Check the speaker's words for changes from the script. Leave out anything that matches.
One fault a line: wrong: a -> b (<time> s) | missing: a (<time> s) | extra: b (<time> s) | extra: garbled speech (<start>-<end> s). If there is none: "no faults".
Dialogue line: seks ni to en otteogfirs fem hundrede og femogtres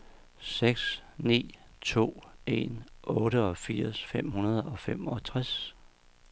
no faults